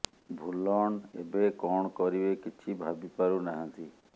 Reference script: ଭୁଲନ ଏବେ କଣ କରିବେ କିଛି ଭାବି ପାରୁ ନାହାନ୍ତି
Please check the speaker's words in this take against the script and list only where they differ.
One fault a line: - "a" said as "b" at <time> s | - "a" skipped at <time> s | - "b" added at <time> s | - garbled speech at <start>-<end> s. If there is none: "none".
none